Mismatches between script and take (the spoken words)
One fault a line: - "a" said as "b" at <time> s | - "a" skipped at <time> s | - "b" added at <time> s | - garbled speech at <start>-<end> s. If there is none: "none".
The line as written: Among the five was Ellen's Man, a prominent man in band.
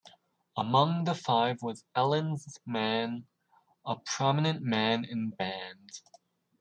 none